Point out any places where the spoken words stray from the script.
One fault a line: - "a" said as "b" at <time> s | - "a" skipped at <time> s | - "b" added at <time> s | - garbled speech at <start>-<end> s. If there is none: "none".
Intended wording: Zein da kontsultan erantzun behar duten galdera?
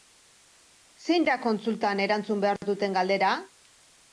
none